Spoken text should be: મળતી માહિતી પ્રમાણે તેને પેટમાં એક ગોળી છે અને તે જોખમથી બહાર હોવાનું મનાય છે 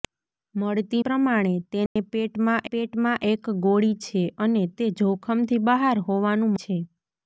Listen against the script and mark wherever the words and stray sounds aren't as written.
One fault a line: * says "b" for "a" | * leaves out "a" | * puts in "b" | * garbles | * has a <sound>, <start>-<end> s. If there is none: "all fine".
* leaves out "માહિતી"
* has a dropout, 1.9-2.0 s
* puts in "પેટમાં"
* leaves out "મનાય"